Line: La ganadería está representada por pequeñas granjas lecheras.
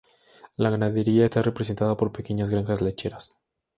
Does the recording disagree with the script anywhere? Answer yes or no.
no